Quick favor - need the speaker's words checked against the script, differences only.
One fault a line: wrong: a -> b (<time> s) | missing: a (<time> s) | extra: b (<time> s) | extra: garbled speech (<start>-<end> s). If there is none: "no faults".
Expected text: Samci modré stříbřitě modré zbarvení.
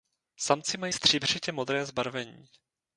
wrong: modré -> mají (0.8 s)